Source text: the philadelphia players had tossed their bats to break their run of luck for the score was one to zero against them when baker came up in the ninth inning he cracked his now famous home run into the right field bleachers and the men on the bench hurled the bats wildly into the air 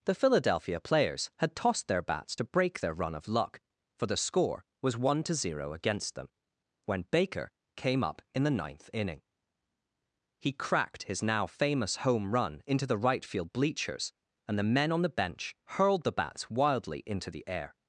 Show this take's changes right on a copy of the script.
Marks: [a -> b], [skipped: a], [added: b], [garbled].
the philadelphia players had tossed their bats to break their run of luck for the score was one to zero against them when baker came up in the ninth inning he cracked his now famous home run into the right field bleachers and the men on the bench hurled the bats wildly into the air